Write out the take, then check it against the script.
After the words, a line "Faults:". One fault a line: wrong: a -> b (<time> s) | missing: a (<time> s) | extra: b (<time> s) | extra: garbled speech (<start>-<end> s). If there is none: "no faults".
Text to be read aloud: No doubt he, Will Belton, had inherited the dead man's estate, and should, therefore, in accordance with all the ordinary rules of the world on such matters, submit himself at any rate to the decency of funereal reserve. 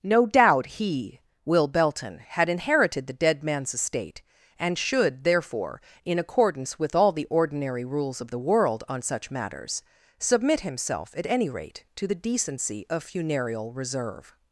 No doubt he, Will Belton, had inherited the dead man's estate, and should, therefore, in accordance with all the ordinary rules of the world on such matters, submit himself at any rate to the decency of funereal reserve.
Faults:
no faults